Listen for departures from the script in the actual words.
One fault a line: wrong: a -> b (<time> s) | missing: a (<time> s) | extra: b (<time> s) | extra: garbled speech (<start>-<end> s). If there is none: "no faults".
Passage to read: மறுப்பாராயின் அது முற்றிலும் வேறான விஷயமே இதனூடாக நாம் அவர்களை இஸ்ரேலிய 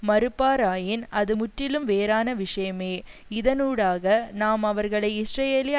no faults